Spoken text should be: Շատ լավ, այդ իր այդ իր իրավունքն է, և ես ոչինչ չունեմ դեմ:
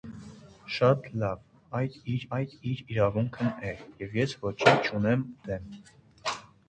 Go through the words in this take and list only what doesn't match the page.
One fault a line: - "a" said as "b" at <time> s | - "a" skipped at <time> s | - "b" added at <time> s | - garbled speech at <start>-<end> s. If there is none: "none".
none